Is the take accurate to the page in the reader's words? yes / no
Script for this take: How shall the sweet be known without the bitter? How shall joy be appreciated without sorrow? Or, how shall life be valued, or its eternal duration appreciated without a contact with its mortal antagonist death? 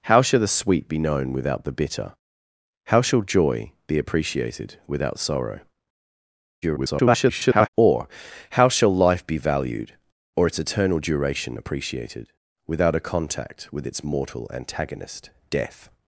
no